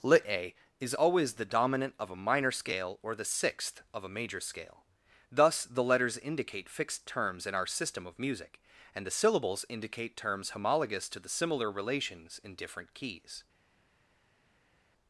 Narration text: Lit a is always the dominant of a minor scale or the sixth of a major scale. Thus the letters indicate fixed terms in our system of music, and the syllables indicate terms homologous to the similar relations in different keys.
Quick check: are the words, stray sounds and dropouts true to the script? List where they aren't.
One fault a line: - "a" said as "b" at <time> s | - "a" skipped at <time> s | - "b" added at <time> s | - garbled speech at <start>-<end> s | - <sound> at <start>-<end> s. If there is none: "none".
none